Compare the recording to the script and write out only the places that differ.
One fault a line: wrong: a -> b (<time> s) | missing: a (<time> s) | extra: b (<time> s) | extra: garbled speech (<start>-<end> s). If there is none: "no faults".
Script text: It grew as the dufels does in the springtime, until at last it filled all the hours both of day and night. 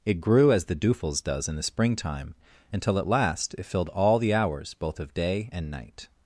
no faults